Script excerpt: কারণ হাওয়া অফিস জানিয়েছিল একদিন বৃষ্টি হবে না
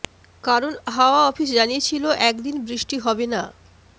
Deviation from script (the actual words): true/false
false